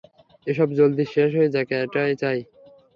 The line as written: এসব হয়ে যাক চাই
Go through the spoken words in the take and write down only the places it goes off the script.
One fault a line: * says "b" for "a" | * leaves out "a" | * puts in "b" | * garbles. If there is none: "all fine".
* puts in "জলদি শেষ"
* puts in "এটাই"